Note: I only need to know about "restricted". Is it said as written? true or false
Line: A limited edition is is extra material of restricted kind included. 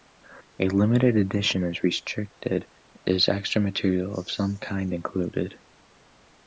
false